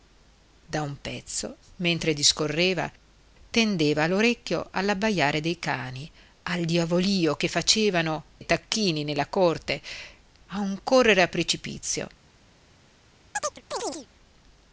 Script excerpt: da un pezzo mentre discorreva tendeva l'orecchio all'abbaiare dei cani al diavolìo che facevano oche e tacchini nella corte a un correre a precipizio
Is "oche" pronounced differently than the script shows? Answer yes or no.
yes